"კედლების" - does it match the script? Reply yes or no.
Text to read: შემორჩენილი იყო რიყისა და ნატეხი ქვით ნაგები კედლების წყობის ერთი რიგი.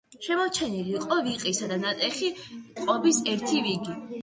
no